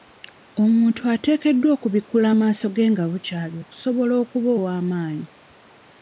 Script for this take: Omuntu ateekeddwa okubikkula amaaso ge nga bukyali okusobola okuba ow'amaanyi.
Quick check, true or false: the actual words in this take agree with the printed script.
true